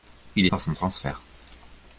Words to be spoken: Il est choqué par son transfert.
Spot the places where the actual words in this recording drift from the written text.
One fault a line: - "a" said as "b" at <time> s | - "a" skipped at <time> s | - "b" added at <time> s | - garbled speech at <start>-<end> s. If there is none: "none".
- "choqué" skipped at 0.5 s